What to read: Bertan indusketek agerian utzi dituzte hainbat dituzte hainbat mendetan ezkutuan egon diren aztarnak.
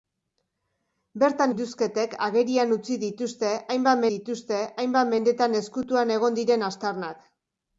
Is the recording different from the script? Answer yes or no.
no